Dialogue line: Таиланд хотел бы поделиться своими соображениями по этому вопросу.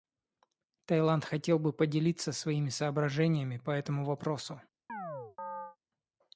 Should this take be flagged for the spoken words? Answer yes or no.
no